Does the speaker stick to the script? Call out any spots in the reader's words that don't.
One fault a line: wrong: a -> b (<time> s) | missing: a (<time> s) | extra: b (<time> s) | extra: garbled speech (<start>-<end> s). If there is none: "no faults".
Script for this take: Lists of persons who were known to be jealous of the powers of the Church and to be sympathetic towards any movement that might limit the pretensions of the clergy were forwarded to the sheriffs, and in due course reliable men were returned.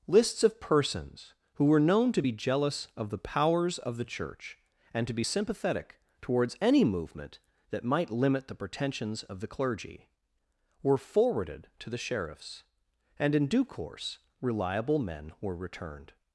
no faults